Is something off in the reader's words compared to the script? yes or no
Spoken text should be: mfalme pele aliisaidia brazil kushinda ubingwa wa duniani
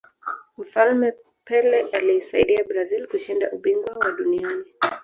no